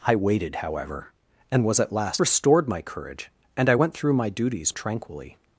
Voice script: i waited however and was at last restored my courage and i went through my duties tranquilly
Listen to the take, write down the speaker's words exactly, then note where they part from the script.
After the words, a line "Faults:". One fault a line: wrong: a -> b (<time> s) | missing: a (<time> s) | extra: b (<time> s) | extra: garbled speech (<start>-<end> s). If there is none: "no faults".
i waited however and was at last restored my courage and i went through my duties tranquilly
Faults:
no faults